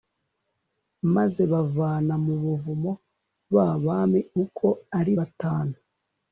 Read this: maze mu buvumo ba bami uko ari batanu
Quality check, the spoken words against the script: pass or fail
fail